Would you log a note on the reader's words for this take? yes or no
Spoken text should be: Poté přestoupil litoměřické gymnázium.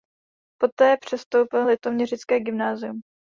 no